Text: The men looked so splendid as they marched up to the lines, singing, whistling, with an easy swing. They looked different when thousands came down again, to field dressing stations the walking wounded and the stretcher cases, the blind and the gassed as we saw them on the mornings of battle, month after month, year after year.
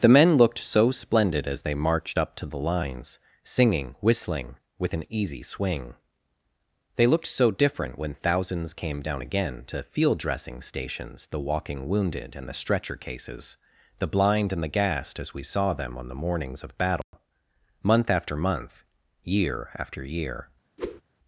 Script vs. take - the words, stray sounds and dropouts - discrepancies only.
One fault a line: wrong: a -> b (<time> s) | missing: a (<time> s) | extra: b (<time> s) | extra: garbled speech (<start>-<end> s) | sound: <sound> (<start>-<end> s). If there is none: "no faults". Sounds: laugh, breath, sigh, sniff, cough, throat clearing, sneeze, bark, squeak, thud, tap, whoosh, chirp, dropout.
extra: so (7.3 s)
sound: dropout (17.0-17.1 s)
sound: whoosh (20.8-21.0 s)